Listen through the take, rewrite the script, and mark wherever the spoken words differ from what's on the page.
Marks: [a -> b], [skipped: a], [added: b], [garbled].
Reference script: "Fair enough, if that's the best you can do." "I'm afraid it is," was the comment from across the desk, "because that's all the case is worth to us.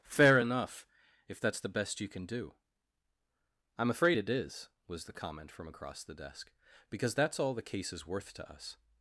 "Fair enough, if that's the best you can do." "I'm afraid it is," was the comment from across the desk, "because that's all the case is worth to us.